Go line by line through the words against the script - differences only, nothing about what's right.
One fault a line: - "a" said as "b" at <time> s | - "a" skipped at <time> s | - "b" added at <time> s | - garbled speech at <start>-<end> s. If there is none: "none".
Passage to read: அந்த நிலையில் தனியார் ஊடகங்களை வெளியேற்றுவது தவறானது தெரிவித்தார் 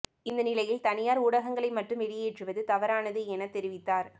- "அந்த" said as "இந்த" at 0.2 s
- "மட்டும்" added at 1.7 s
- "என" added at 3.3 s